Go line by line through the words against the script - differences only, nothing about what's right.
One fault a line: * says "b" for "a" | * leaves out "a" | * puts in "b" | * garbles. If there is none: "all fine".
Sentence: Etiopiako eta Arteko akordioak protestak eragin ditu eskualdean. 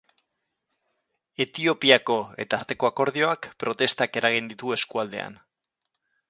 all fine